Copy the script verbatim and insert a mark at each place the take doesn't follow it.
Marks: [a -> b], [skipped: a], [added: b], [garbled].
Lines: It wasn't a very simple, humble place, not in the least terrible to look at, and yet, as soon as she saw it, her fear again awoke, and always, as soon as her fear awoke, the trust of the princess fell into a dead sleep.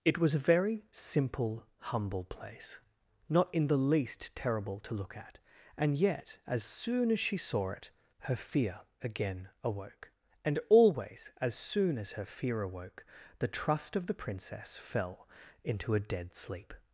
It [wasn't -> was] a very simple, humble place, not in the least terrible to look at, and yet, as soon as she saw it, her fear again awoke, and always, as soon as her fear awoke, the trust of the princess fell into a dead sleep.